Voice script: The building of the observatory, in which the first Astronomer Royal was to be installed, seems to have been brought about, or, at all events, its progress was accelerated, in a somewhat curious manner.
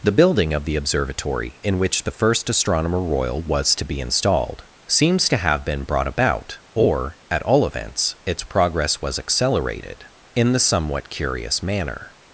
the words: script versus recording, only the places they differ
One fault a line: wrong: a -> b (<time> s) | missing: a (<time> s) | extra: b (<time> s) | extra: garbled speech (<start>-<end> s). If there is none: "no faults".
wrong: a -> the (10.5 s)